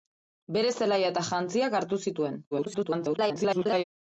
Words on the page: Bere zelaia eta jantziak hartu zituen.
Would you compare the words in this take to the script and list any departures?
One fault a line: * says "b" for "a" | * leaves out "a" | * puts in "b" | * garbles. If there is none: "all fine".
* garbles